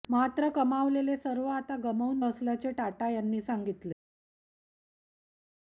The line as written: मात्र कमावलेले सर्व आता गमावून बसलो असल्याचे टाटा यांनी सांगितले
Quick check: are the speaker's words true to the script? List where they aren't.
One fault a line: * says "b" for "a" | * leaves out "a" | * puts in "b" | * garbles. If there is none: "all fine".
* leaves out "बसलो"